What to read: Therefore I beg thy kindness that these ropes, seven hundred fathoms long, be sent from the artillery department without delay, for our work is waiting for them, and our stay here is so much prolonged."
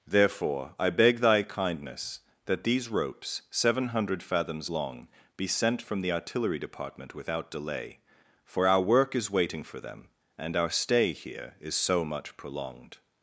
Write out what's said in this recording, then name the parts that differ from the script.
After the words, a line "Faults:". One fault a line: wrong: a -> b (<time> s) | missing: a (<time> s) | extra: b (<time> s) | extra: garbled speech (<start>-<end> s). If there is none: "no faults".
Therefore I beg thy kindness that these ropes, seven hundred fathoms long, be sent from the artillery department without delay, for our work is waiting for them, and our stay here is so much prolonged."
Faults:
no faults